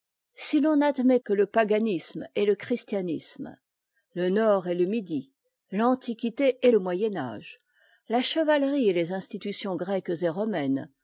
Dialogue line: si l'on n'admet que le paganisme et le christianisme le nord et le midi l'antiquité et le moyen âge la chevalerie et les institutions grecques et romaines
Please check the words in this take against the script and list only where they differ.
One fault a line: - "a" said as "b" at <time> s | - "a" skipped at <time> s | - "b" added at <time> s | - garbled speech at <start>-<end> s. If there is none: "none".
none